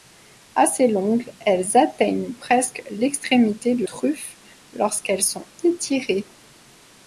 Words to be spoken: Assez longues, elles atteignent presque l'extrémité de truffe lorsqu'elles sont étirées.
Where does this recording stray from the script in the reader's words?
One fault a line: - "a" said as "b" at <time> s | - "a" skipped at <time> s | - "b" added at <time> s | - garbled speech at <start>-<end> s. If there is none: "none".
none